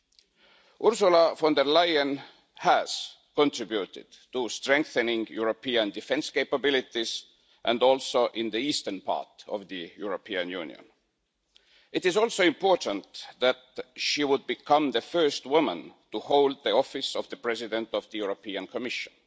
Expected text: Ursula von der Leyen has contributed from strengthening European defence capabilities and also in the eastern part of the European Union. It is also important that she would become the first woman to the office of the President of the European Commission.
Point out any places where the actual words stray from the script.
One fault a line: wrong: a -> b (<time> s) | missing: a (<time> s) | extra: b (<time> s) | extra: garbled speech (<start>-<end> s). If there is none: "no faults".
wrong: from -> to (4.3 s)
extra: hold (16.2 s)